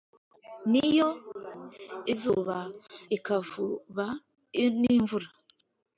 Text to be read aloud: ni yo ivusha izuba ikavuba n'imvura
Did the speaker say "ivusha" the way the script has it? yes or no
no